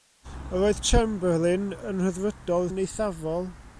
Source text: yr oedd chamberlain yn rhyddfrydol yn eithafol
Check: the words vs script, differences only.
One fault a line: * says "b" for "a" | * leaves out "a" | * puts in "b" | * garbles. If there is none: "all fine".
all fine